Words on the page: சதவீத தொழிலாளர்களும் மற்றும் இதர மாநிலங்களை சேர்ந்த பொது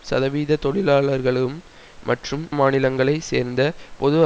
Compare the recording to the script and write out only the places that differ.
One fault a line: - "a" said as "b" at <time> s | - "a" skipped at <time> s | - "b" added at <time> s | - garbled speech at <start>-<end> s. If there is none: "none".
- "இதர" skipped at 2.4 s